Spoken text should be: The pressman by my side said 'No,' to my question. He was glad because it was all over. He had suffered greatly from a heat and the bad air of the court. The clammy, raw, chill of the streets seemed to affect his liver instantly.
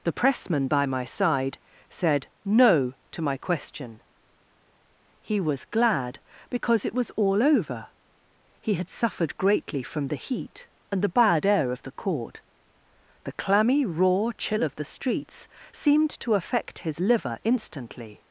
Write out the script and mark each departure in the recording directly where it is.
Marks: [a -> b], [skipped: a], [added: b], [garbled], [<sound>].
The pressman by my side said 'No,' to my question. He was glad because it was all over. He had suffered greatly from [a -> the] heat and the bad air of the court. The clammy, raw, chill of the streets seemed to affect his liver instantly.